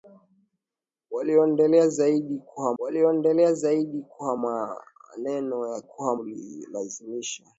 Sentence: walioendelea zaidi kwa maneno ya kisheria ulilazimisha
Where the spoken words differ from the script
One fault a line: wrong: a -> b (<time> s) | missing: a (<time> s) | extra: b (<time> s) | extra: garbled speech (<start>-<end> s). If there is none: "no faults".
extra: walioendelea zaidi kwa (2.8 s)
wrong: kisheria -> kwa (5.8 s)